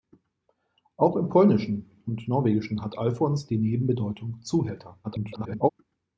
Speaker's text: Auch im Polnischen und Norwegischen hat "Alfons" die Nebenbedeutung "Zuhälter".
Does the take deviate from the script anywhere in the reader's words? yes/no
yes